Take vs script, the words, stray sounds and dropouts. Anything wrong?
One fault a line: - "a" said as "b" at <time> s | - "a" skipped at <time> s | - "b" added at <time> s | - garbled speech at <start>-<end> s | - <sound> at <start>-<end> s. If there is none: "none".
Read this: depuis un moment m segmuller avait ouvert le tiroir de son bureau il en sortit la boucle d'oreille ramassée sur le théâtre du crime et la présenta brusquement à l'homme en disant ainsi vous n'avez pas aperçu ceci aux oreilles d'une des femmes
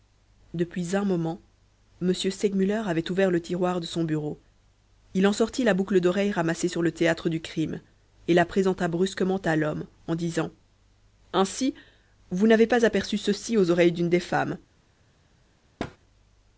- thud at 15.8-16.0 s